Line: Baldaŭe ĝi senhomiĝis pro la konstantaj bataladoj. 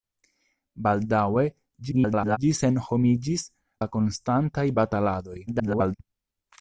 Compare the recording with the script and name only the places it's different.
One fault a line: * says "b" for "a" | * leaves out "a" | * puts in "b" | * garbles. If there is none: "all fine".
* garbles
* leaves out "pro"
* garbles